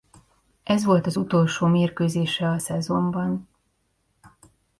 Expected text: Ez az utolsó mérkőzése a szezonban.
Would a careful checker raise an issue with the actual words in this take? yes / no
yes